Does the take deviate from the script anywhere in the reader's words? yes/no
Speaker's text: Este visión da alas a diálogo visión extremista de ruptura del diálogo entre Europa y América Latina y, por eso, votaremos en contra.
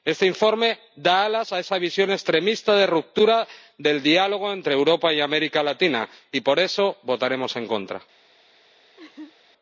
yes